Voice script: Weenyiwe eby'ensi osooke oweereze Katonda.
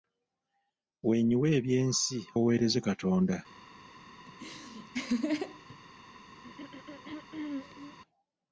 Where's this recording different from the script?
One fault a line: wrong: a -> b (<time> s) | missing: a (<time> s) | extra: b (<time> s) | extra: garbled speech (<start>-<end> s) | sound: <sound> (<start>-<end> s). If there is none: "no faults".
missing: osooke (2.2 s)
sound: laugh (4.3-5.8 s)
sound: throat clearing (6.4-8.0 s)